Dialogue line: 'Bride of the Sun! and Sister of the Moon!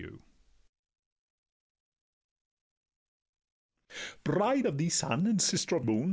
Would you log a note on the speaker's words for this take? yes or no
yes